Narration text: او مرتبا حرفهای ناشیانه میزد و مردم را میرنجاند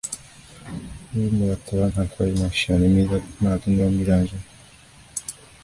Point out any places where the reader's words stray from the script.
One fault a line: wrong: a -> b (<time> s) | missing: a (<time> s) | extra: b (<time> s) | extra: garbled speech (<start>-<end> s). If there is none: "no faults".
no faults